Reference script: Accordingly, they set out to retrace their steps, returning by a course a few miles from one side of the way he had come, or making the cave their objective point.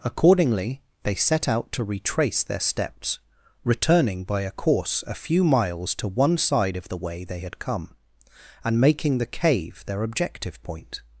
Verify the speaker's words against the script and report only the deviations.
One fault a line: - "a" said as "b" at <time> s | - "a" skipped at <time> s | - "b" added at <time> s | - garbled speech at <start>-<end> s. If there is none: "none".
- "from" said as "to" at 6.0 s
- "he" said as "they" at 7.2 s
- "or" said as "and" at 8.6 s